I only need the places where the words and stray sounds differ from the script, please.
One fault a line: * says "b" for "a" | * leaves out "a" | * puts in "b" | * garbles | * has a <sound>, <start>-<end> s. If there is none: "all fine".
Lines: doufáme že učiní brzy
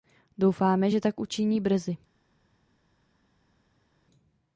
* puts in "tak"